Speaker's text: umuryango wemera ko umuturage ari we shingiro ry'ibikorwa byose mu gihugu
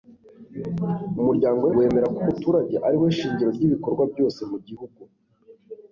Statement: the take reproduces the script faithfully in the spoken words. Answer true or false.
true